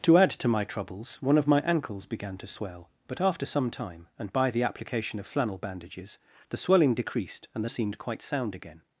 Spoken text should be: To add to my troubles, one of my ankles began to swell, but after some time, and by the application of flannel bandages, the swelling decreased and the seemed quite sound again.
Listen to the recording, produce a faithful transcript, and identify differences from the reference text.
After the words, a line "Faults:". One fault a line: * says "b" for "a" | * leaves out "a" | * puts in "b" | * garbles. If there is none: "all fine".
To add to my troubles, one of my ankles began to swell, but after some time, and by the application of flannel bandages, the swelling decreased and the seemed quite sound again.
Faults:
all fine